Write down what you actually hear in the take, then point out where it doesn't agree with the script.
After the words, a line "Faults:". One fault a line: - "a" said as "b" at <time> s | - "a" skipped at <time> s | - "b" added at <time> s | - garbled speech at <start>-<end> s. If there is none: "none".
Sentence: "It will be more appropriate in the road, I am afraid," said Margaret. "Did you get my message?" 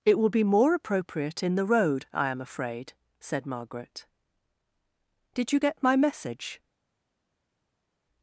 "It will be more appropriate in the road, I am afraid," said Margaret. "Did you get my message?"
Faults:
none